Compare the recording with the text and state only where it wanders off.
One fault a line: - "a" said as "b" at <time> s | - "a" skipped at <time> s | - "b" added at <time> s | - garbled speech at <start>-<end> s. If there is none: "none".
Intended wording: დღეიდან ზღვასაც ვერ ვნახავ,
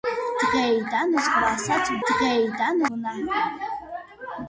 - "ვერ" said as "დღეიდან" at 2.1 s